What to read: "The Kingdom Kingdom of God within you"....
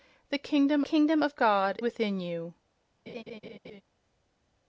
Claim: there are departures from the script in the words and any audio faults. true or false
true